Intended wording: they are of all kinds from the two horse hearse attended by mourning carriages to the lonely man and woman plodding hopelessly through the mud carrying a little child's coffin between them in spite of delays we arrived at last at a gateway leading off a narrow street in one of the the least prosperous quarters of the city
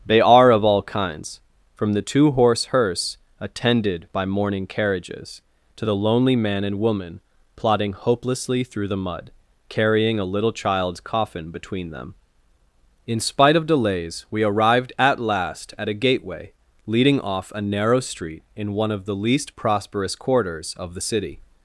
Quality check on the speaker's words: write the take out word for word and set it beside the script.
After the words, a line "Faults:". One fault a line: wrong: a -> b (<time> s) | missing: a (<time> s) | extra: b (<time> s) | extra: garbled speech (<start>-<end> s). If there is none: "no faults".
they are of all kinds from the two horse hearse attended by mourning carriages to the lonely man and woman plodding hopelessly through the mud carrying a little child's coffin between them in spite of delays we arrived at last at a gateway leading off a narrow street in one of the least prosperous quarters of the city
Faults:
missing: the (19.2 s)